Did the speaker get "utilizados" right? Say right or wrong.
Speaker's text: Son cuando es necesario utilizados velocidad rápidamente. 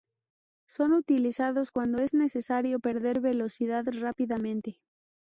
wrong